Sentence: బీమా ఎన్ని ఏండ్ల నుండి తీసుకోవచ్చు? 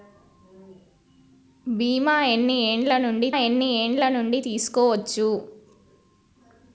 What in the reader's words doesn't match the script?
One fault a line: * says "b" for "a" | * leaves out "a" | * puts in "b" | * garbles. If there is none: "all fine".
* puts in "ఎన్ని ఏండ్ల నుండి"